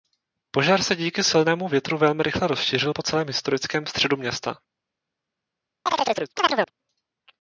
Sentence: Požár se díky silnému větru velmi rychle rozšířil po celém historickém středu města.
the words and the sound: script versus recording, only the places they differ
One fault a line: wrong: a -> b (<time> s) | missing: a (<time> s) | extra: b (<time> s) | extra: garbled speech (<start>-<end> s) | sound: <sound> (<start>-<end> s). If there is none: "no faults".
sound: chirp (5.9-6.7 s)